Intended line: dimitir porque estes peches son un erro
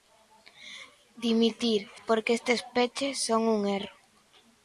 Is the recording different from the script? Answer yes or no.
no